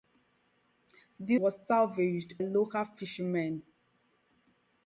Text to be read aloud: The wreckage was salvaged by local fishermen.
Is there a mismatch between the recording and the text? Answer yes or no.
yes